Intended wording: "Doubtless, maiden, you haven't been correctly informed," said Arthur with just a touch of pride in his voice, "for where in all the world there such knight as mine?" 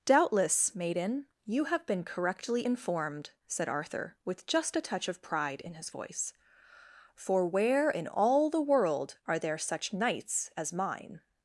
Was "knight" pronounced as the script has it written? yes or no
no